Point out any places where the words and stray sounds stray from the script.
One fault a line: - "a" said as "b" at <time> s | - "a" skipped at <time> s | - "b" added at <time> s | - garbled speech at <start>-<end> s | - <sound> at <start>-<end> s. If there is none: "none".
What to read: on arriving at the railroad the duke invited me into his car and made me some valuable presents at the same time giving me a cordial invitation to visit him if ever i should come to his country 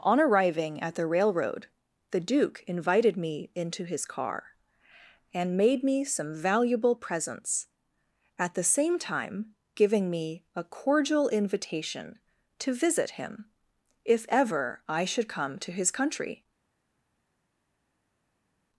none